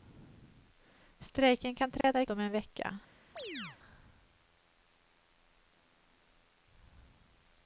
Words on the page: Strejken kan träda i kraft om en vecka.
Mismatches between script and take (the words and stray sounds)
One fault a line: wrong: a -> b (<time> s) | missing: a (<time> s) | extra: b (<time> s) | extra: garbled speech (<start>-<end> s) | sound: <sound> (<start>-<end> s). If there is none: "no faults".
sound: dropout (2.0-2.0 s)
missing: kraft (2.2 s)
sound: chirp (3.4-3.8 s)